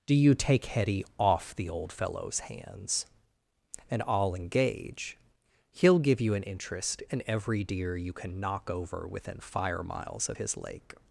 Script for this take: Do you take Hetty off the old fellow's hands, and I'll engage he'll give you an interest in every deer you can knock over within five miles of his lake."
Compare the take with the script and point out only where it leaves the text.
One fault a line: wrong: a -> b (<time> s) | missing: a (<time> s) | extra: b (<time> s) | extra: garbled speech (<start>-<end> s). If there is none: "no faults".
wrong: five -> fire (9.4 s)